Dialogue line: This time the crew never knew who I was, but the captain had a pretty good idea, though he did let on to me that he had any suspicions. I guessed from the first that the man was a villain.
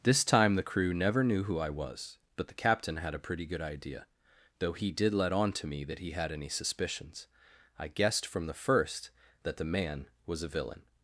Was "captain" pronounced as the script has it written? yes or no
yes